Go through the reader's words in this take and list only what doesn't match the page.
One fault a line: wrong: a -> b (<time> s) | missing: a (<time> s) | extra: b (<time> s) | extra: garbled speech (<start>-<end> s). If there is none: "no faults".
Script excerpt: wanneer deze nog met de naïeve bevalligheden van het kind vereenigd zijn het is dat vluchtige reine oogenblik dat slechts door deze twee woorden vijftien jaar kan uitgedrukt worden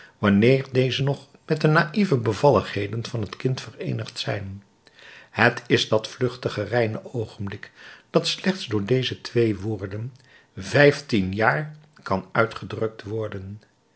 no faults